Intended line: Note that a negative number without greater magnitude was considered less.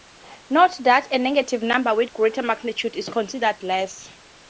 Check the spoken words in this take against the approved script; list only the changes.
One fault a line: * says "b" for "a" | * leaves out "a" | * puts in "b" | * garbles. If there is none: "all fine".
* says "with" for "without"
* says "is" for "was"